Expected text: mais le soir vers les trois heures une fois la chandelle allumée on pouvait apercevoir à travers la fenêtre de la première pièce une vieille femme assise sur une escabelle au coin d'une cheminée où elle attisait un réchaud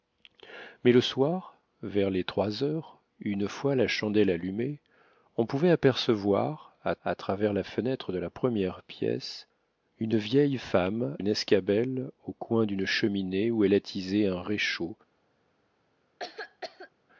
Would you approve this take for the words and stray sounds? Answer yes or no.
no